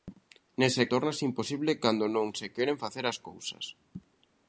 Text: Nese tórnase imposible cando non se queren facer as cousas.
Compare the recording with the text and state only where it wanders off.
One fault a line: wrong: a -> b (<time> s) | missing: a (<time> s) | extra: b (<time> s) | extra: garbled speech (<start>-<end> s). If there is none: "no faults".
no faults